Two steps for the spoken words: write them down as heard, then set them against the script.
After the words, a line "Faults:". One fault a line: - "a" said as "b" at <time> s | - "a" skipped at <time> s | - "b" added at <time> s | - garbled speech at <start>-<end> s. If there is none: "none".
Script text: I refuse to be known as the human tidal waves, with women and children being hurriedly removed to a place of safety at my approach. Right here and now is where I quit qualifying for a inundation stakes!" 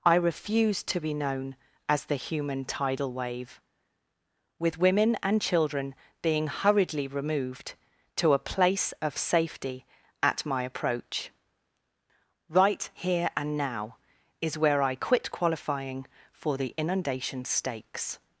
I refuse to be known as the human tidal wave, with women and children being hurriedly removed to a place of safety at my approach. Right here and now is where I quit qualifying for the inundation stakes!"
Faults:
- "waves" said as "wave" at 3.1 s
- "a" said as "the" at 16.6 s